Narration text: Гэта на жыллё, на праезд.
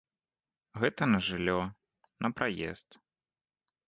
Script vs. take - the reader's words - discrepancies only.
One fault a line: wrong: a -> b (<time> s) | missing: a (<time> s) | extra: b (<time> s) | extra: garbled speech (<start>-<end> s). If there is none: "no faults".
no faults